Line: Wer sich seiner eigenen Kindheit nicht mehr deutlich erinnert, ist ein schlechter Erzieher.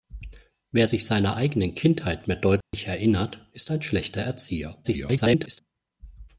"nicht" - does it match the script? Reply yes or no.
no